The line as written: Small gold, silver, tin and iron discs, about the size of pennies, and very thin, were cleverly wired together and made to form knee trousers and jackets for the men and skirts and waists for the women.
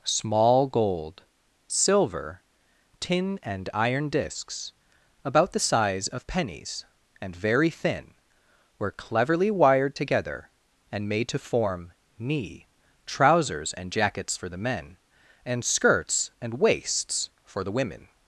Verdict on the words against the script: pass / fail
pass